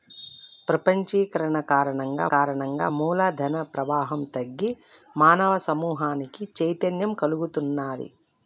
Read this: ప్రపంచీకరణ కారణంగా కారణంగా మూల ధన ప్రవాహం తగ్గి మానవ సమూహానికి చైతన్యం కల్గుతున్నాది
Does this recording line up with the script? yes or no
yes